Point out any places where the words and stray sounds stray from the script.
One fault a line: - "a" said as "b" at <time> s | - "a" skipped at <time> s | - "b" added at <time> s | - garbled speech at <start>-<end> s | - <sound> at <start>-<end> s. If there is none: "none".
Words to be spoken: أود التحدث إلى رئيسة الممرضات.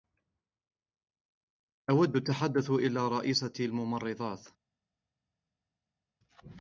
none